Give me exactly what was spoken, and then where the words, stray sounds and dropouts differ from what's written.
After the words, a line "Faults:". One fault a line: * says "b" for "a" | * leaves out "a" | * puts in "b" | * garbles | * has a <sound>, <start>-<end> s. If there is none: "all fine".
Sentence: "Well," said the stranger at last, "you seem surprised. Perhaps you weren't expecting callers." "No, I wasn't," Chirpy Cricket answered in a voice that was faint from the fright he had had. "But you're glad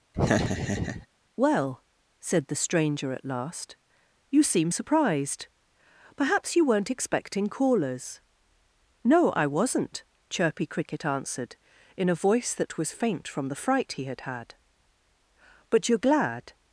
"Well," said the stranger at last, "you seem surprised. Perhaps you weren't expecting callers." "No, I wasn't," Chirpy Cricket answered in a voice that was faint from the fright he had had. "But you're glad
Faults:
* has a laugh, 0.1-1.1 s